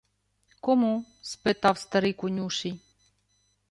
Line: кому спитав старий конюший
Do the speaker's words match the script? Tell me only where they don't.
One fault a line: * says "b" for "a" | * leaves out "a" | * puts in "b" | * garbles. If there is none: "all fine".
all fine